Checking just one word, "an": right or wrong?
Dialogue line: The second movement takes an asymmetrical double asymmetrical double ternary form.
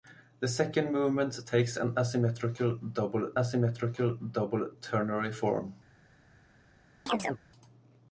right